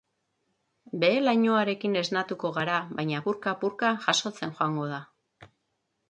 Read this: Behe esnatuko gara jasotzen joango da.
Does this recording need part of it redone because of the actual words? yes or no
yes